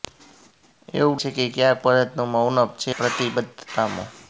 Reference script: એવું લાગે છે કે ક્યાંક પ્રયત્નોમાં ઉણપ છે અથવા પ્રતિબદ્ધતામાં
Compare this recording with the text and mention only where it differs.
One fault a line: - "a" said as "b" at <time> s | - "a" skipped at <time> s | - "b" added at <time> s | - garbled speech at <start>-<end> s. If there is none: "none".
- "લાગે" skipped at 1.2 s
- "અથવા" skipped at 2.9 s